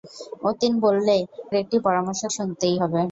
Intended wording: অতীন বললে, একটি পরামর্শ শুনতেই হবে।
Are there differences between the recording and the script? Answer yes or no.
no